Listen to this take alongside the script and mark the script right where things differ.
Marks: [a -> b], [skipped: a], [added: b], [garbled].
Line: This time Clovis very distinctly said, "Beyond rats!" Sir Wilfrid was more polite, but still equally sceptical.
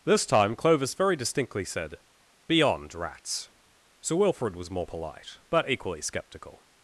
This time Clovis very distinctly said, "Beyond rats!" Sir Wilfrid was more polite, but [skipped: still] equally sceptical.